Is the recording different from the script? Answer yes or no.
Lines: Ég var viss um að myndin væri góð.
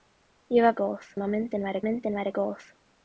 yes